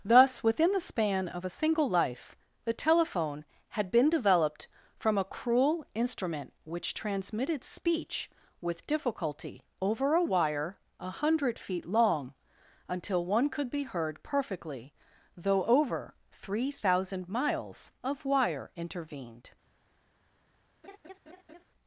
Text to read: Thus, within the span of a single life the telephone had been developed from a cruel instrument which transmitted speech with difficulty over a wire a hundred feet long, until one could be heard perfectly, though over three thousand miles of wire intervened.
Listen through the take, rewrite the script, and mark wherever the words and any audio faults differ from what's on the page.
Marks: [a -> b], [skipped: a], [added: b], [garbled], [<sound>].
Thus, within the span of a single life the telephone had been developed from a cruel instrument which transmitted speech with difficulty over a wire a hundred feet long, until one could be heard perfectly, though over three thousand miles of wire intervened. [laugh]